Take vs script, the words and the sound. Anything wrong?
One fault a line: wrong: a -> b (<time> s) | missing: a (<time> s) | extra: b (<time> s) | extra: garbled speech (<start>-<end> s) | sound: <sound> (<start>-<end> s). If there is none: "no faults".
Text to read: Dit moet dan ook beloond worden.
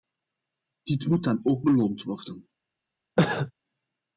sound: cough (3.2-3.5 s)